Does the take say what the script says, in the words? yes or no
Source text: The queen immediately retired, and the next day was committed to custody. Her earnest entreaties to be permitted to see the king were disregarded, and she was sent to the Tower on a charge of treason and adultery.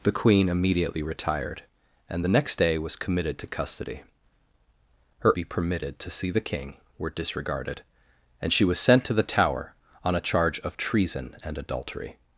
no